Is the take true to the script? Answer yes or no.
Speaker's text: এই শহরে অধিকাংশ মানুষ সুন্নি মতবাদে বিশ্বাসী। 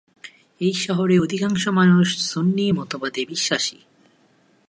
yes